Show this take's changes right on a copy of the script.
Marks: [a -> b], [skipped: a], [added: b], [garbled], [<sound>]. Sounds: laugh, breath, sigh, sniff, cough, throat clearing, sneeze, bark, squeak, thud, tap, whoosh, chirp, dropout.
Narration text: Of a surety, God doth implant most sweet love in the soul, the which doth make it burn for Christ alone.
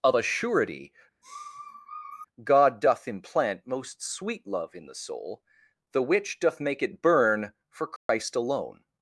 Of a surety, [sniff] God doth implant most sweet love in the soul, the which doth make it burn for Christ [dropout] alone.